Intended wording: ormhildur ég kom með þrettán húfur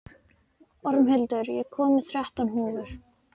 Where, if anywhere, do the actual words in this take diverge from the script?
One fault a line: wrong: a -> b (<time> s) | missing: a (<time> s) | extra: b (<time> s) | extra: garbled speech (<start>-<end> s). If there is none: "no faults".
no faults